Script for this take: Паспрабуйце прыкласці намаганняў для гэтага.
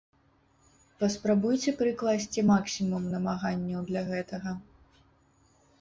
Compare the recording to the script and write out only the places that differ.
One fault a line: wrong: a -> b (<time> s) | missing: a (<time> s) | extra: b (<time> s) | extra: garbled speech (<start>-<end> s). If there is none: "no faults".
extra: максімум (2.5 s)